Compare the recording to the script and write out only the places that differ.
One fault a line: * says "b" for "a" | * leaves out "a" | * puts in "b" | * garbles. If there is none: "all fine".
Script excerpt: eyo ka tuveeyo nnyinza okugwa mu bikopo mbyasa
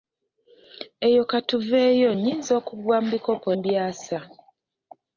all fine